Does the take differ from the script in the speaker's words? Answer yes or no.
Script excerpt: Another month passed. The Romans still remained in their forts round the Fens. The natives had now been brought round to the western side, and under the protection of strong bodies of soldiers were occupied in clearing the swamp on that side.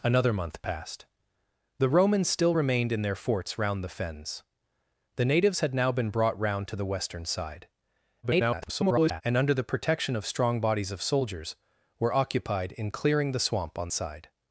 yes